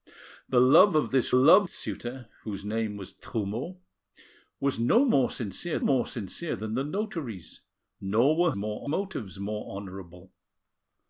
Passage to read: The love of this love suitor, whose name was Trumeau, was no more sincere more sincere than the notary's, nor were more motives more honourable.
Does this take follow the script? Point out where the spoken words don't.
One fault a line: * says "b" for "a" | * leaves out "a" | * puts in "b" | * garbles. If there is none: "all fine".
all fine